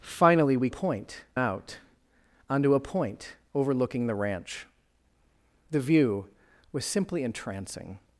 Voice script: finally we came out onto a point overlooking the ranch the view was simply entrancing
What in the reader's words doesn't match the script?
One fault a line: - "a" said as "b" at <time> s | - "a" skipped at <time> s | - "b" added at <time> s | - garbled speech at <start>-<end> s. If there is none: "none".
- "came" said as "point" at 0.7 s